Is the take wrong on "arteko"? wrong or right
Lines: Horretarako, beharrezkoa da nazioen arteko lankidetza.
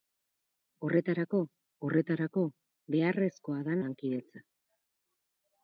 wrong